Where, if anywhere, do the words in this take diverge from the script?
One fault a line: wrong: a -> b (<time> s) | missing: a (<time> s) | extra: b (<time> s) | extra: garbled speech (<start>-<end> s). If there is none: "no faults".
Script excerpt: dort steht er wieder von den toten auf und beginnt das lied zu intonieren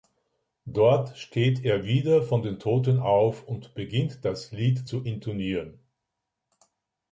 no faults